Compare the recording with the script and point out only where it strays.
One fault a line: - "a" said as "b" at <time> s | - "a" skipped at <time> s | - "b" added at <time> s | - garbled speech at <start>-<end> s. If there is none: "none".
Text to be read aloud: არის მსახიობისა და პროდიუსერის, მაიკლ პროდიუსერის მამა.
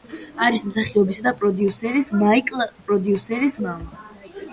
none